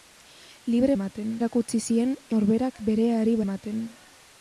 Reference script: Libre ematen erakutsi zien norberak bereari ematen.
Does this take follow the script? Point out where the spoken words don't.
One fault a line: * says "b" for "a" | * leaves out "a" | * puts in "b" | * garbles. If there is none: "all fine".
all fine